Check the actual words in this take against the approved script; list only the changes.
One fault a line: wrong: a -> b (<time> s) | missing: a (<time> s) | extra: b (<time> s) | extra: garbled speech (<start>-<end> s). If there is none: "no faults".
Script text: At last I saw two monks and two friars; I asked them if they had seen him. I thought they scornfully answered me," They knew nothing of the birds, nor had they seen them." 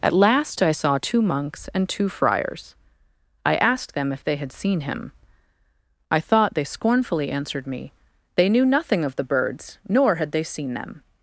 no faults